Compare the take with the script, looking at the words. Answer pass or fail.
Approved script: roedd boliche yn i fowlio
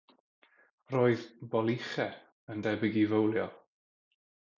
fail